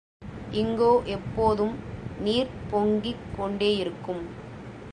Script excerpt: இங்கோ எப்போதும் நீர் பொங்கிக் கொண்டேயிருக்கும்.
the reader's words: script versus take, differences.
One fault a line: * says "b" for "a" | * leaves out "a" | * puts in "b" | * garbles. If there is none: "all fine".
all fine